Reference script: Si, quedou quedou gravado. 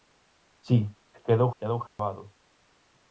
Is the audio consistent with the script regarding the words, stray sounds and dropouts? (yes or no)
no